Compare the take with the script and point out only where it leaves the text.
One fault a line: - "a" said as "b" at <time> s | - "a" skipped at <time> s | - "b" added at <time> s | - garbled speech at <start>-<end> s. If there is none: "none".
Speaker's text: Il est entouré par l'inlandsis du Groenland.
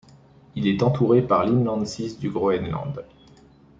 none